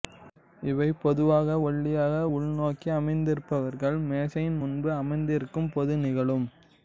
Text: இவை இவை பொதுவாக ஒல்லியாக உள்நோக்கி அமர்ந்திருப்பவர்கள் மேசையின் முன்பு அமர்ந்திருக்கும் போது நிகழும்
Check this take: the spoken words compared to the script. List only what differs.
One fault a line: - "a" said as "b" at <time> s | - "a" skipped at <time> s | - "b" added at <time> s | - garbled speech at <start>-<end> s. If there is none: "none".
- "இவை" skipped at 0.9 s